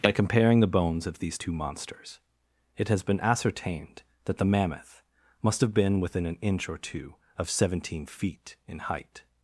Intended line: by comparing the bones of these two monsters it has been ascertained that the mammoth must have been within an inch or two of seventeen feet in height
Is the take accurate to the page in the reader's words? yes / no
yes